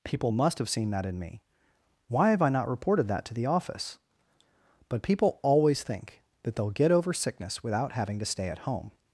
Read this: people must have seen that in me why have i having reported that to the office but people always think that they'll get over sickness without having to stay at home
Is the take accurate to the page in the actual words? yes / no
no